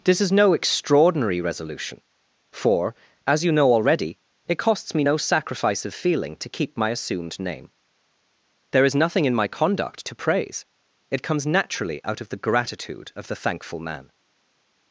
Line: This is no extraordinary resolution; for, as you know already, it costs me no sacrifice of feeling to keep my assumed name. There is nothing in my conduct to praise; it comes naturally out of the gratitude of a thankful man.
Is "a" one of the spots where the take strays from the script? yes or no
yes